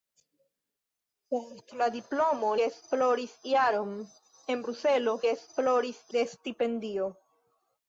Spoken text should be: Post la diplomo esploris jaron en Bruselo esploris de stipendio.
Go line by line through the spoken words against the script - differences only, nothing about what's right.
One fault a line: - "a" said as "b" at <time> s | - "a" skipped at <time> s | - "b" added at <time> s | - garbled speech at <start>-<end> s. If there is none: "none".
none